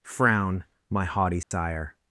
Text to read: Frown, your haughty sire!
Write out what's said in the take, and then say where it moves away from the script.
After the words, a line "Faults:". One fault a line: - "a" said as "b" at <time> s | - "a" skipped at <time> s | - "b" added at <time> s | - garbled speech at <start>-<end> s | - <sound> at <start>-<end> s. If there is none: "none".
Frown, my haughty sire!
Faults:
- "your" said as "my" at 0.9 s
- dropout at 1.4-1.5 s